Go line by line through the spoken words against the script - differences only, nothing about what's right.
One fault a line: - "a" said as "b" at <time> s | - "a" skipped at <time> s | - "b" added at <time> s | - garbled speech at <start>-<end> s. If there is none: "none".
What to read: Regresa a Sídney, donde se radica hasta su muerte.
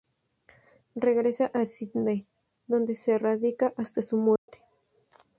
none